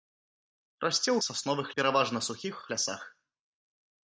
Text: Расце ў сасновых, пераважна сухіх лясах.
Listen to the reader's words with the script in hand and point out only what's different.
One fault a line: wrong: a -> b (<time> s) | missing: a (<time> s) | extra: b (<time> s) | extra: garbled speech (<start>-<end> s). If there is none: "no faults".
no faults